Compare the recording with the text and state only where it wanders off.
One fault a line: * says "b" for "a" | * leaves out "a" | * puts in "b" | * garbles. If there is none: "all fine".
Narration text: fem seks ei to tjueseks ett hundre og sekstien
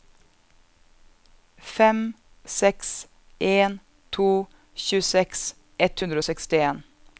* says "en" for "ei"